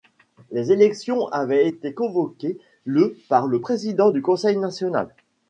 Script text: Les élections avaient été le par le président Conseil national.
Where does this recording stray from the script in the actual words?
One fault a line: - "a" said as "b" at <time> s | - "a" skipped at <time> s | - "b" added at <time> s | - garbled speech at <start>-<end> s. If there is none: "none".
- "convoquées" added at 1.9 s
- "du" added at 4.1 s